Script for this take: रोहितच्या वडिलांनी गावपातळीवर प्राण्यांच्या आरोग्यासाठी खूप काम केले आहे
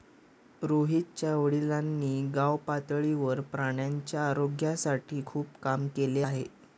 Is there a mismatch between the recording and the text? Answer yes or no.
no